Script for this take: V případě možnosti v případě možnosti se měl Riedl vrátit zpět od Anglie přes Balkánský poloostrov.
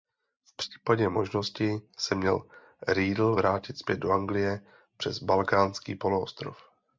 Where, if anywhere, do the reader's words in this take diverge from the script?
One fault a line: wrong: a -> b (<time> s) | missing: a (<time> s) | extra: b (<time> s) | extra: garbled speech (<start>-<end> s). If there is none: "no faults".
missing: v případě možnosti (1.8 s)
wrong: od -> do (4.0 s)